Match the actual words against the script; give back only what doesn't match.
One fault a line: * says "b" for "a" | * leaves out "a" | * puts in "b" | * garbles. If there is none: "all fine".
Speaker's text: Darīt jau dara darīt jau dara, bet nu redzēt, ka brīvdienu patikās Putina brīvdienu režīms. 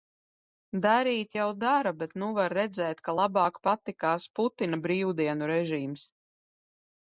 * leaves out "darīt jau dara"
* puts in "var"
* says "labāk" for "brīvdienu"